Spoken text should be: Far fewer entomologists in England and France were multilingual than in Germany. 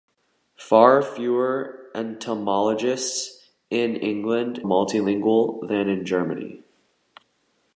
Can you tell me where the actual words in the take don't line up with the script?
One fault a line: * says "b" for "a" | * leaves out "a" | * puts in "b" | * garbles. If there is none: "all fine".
* leaves out "and France were"